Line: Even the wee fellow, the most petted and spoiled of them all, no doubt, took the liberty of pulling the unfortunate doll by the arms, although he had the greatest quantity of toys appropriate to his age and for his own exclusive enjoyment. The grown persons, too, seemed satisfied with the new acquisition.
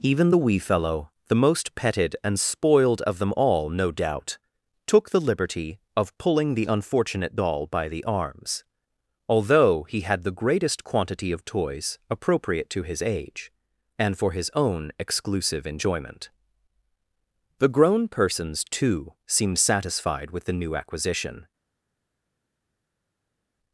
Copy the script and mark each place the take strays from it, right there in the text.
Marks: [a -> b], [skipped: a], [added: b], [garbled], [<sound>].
Even the wee fellow, the most petted and spoiled of them all, no doubt, took the liberty of pulling the unfortunate doll by the arms, although he had the greatest quantity of toys appropriate to his age and for his own exclusive enjoyment. The grown persons, too, seemed satisfied with the new acquisition.